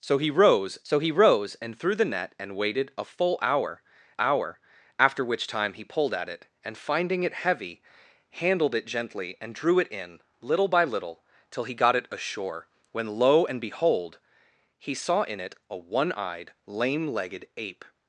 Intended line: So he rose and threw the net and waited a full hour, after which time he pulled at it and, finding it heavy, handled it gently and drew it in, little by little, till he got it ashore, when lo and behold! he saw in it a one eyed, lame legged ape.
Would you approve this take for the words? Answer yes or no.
no